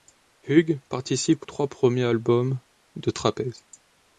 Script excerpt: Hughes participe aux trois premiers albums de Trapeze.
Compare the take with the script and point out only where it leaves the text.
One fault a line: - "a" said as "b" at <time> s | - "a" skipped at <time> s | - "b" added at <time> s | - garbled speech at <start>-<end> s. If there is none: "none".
- "aux" skipped at 1.4 s